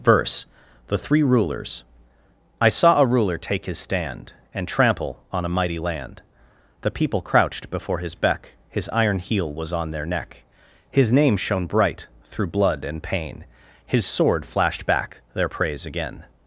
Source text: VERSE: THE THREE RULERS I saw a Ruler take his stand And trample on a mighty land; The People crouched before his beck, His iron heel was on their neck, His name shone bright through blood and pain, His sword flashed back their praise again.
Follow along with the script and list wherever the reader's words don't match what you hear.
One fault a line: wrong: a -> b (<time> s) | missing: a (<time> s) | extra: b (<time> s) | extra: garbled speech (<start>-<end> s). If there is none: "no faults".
no faults